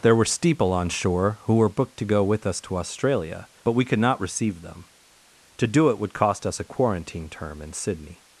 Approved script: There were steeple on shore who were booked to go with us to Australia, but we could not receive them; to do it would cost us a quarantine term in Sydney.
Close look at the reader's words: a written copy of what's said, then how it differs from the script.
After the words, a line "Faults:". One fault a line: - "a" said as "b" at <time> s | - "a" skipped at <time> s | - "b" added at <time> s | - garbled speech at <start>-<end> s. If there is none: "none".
There were steeple on shore who were booked to go with us to Australia, but we could not receive them; to do it would cost us a quarantine term in Sydney.
Faults:
none